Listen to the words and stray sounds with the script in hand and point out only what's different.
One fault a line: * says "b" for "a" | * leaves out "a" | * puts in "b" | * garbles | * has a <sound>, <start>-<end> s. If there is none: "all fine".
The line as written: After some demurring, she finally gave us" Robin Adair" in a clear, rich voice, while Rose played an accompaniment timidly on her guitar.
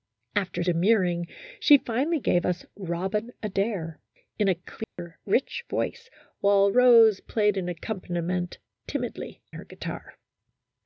* leaves out "some"
* has a dropout, 4.8-5.0 s
* leaves out "on"